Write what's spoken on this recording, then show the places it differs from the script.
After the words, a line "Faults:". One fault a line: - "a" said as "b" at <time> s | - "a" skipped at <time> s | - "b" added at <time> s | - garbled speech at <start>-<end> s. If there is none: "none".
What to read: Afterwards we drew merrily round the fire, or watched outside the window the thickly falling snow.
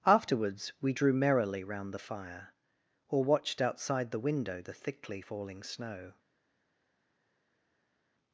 Afterwards we drew merrily round the fire, or watched outside the window the thickly falling snow.
Faults:
none